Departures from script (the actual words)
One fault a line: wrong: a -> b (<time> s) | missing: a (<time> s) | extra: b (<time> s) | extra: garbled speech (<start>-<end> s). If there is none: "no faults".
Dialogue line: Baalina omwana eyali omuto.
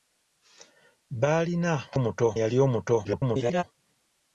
wrong: omwana -> omuto (2.0 s)
extra: garbled speech (3.0-3.6 s)